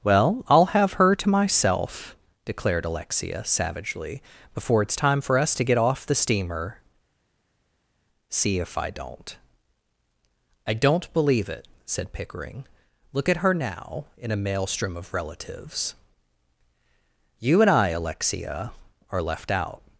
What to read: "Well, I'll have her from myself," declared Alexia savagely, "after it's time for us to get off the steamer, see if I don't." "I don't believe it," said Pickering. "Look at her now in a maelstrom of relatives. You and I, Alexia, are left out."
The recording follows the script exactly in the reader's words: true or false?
false